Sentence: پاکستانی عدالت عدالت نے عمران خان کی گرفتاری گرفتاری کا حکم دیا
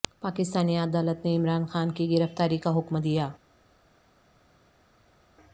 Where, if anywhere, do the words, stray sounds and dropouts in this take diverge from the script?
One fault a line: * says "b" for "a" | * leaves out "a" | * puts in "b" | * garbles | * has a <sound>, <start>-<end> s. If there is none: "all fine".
* leaves out "عدالت"
* leaves out "گرفتاری"